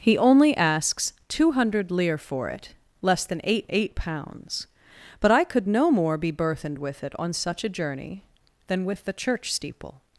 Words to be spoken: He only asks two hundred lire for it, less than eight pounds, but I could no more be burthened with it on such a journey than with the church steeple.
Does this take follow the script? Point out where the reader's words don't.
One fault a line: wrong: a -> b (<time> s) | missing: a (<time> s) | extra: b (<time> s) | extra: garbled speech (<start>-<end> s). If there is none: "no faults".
extra: eight (3.7 s)